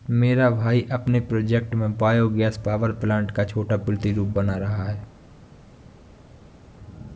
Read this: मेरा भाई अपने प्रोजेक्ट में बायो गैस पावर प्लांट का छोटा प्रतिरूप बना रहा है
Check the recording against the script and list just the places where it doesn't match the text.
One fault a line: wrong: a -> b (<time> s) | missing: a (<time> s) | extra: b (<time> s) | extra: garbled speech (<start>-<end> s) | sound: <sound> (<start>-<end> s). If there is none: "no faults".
no faults